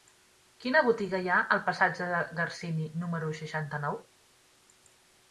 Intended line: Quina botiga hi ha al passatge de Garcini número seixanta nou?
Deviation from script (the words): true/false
false